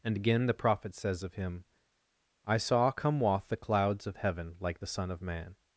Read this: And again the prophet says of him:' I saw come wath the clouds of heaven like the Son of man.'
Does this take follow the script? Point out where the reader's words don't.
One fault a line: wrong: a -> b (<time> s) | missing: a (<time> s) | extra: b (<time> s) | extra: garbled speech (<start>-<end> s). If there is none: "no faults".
no faults